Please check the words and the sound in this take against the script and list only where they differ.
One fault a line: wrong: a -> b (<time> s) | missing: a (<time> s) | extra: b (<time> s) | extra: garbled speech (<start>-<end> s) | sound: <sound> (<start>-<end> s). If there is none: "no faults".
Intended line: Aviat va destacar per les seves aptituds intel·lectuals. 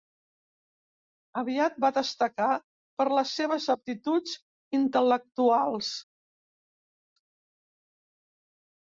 no faults